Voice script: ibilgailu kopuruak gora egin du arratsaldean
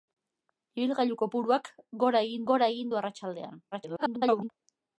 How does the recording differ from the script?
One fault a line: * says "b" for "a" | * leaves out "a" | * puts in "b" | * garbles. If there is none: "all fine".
* puts in "gora egin"
* garbles